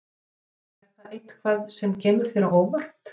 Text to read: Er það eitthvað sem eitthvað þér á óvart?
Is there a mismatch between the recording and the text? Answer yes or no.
yes